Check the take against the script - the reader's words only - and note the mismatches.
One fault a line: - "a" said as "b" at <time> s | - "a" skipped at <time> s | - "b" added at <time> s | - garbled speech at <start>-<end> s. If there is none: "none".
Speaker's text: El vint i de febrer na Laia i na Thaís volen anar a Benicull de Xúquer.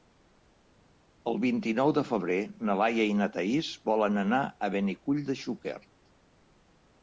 - "nou" added at 1.8 s